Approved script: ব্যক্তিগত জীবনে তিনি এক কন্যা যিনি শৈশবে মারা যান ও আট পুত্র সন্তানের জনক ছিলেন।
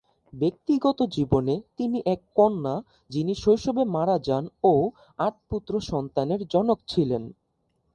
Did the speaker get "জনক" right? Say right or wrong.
right